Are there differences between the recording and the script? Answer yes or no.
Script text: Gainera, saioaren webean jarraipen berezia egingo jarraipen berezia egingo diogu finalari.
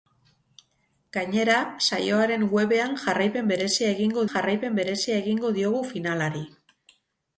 no